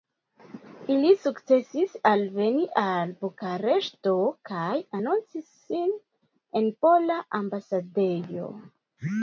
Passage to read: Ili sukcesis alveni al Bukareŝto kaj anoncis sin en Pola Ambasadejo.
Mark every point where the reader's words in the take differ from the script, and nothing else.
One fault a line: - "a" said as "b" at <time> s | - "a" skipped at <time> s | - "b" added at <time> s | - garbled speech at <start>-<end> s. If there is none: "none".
none